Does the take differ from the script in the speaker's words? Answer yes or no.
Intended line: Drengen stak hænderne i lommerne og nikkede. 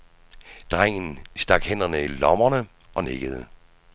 no